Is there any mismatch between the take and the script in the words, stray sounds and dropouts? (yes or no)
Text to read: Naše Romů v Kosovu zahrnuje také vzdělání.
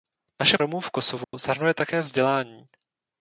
yes